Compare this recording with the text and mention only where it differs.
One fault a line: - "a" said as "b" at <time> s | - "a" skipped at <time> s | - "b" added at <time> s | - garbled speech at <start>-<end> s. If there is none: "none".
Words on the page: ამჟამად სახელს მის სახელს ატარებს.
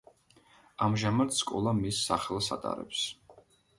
- "სახელს" said as "სკოლა" at 1.4 s